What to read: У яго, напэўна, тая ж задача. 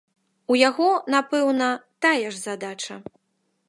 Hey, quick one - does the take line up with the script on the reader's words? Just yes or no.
yes